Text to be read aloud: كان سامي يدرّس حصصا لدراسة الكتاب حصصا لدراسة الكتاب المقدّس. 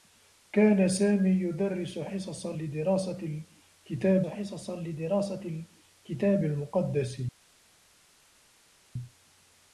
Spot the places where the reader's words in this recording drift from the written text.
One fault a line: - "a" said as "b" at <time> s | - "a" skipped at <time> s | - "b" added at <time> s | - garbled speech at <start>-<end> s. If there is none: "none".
none